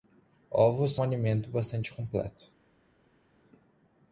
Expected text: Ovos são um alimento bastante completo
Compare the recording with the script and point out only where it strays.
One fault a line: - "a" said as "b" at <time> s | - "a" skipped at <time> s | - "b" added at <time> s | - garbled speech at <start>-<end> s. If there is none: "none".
- "são" skipped at 0.9 s